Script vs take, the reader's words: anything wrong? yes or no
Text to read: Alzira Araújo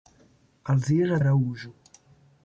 no